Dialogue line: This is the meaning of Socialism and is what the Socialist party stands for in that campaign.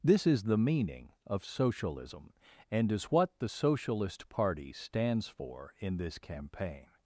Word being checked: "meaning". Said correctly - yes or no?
yes